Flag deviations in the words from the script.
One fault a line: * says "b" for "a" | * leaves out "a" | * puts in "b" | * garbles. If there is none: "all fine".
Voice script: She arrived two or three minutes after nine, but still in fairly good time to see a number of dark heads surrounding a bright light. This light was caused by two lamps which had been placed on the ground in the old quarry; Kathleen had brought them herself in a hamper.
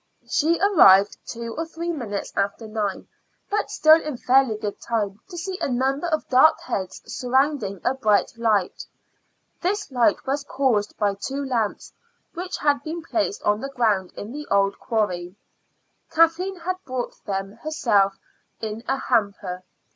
all fine